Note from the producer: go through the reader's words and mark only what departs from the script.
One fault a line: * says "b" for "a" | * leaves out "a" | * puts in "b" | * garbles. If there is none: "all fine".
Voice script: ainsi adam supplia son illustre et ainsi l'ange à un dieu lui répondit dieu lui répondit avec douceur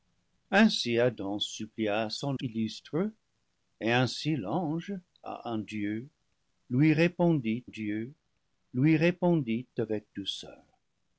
all fine